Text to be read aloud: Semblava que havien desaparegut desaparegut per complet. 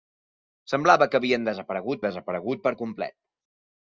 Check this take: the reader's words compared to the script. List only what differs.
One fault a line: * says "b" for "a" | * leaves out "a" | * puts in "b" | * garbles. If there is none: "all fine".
all fine